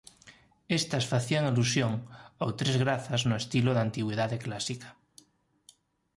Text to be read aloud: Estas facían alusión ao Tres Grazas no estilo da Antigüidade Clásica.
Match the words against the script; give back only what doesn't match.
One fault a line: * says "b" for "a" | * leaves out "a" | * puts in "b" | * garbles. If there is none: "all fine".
all fine